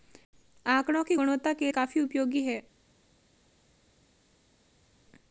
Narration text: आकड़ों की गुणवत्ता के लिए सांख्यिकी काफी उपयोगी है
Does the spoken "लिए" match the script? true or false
false